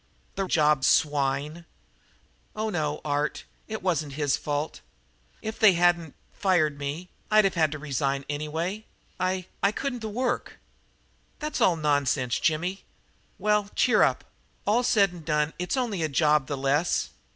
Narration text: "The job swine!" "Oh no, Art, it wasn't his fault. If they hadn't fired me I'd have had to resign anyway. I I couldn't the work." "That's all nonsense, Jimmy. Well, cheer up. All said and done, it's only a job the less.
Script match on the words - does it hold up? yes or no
yes